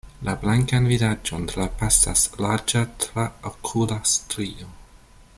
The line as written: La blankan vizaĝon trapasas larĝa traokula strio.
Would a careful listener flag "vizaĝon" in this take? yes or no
no